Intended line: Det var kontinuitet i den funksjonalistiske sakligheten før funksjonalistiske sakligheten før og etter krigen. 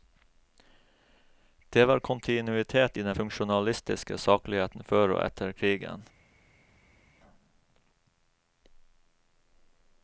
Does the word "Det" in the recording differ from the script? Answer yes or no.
no